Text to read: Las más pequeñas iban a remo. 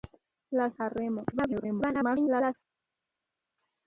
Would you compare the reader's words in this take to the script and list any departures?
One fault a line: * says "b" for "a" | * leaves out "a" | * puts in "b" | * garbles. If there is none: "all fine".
* leaves out "más pequeñas iban"
* garbles